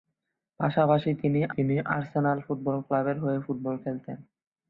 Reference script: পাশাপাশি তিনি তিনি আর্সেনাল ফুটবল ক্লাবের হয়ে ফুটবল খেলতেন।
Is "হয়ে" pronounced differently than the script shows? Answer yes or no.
no